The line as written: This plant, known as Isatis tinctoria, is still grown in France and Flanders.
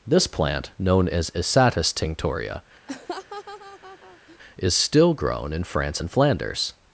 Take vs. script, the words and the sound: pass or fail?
fail